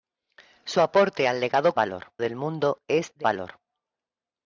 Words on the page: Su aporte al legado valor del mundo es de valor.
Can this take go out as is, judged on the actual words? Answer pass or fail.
pass